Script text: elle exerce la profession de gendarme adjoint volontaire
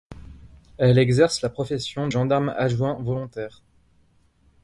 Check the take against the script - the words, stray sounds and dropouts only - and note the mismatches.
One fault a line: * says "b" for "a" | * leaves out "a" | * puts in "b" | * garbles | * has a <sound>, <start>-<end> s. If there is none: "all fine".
* leaves out "de"